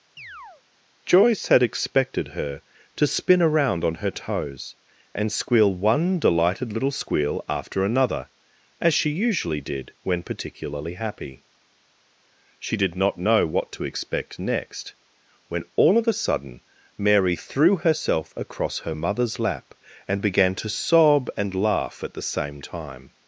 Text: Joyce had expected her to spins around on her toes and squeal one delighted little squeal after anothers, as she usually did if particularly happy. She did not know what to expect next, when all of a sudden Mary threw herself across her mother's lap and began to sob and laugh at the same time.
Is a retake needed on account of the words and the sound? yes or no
yes